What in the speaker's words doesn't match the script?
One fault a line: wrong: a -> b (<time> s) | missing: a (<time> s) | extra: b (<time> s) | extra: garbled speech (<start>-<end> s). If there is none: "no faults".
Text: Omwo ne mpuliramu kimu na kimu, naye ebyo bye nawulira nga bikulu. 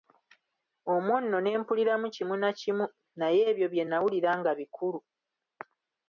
extra: nno (1.2 s)